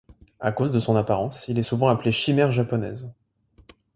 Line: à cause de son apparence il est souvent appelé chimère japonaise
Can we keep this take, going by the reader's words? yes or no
yes